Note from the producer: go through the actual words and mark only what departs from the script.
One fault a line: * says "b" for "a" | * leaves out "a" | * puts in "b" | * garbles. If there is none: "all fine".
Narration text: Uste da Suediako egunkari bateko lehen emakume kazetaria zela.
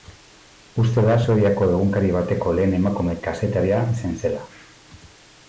* puts in "izan"